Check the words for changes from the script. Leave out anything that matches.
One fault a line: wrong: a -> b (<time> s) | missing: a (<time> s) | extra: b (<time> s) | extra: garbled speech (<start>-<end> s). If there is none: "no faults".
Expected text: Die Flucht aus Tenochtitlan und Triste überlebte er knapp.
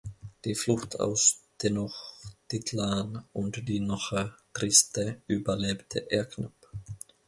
extra: die Noche (3.7 s)